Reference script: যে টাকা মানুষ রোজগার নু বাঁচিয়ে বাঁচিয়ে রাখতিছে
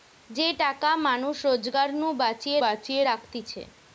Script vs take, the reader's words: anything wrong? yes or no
no